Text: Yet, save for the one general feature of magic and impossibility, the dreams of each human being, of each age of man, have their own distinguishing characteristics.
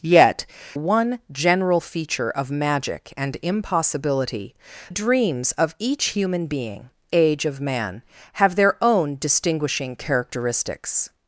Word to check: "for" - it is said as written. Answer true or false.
false